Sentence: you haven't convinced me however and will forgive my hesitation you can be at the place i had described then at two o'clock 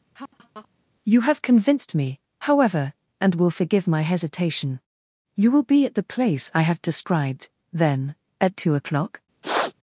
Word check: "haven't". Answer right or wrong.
wrong